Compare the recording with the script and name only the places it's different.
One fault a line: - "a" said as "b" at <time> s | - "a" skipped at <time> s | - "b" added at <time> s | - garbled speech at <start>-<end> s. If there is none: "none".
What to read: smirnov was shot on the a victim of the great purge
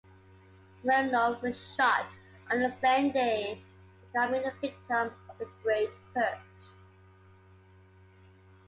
- "same day becoming" added at 2.7 s